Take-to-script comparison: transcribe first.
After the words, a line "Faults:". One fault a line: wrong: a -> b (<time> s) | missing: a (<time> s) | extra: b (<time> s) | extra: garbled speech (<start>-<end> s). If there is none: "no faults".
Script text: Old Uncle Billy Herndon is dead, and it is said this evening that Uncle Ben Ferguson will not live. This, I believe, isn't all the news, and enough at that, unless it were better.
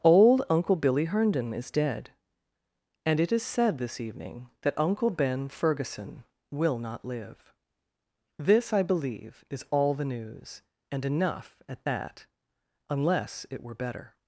Old Uncle Billy Herndon is dead, and it is said this evening that Uncle Ben Ferguson will not live. This, I believe, is all the news, and enough at that, unless it were better.
Faults:
wrong: isn't -> is (9.5 s)